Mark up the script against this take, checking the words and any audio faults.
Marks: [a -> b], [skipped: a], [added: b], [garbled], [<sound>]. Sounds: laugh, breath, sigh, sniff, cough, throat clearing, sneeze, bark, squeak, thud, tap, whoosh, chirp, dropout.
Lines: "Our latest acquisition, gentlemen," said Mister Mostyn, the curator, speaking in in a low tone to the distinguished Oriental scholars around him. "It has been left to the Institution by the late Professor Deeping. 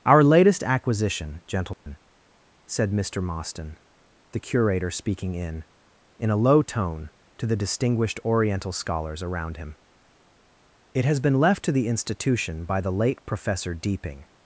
"Our latest acquisition, gentlemen," [dropout] said Mister Mostyn, the curator, speaking in in a low tone to the distinguished Oriental scholars around him. "It has been left to the Institution by the late Professor Deeping.